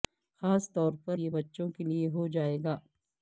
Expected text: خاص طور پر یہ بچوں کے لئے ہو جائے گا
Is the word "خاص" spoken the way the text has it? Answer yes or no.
yes